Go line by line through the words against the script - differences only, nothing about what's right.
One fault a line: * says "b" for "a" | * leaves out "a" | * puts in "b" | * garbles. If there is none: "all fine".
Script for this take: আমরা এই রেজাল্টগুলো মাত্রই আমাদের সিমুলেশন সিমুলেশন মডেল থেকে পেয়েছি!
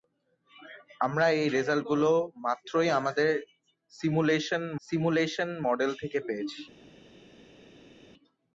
all fine